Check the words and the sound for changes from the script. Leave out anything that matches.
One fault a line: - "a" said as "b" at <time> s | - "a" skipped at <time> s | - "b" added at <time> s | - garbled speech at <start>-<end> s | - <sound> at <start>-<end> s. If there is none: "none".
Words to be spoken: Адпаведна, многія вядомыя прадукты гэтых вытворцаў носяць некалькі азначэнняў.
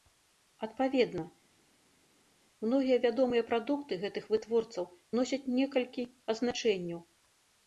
none